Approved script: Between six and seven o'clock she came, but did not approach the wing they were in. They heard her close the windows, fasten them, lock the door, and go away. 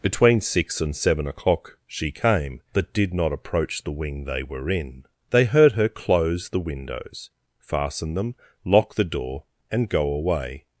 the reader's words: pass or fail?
pass